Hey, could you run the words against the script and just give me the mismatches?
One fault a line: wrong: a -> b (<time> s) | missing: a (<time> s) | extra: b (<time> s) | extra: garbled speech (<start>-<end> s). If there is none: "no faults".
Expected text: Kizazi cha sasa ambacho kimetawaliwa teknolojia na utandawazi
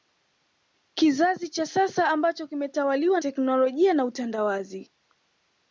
no faults